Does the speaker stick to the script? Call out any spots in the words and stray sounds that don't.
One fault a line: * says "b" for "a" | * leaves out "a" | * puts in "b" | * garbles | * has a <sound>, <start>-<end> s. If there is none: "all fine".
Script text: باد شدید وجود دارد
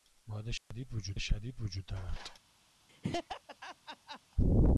* has a dropout, 0.6-0.7 s
* puts in "شدید وجود"
* has a laugh, 2.9-4.2 s